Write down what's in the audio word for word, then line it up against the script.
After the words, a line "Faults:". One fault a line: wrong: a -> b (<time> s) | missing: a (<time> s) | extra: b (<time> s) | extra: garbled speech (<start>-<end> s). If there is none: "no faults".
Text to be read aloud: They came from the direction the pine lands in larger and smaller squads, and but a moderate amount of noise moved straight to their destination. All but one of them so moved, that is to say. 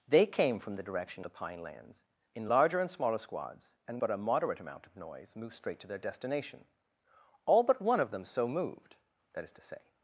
They came from the direction the pine lands in larger and smaller squads, and but a moderate amount of noise moved straight to their destination. All but one of them so moved, that is to say.
Faults:
no faults